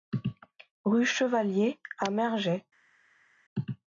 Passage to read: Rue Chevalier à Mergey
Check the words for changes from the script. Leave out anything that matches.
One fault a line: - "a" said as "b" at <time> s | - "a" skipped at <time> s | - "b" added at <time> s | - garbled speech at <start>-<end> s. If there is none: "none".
none